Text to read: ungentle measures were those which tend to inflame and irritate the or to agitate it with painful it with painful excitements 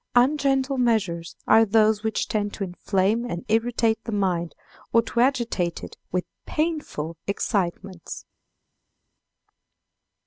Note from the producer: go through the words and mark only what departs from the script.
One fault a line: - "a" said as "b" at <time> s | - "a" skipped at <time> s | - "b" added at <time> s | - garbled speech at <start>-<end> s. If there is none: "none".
- "were" said as "are" at 1.5 s
- "mind" added at 4.1 s
- "it with painful" skipped at 7.2 s